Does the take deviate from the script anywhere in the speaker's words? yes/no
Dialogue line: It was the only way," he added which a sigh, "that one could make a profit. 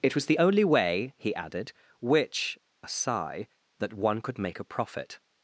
no